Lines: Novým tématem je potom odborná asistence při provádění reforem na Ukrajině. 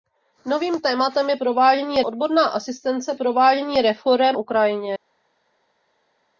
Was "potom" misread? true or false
true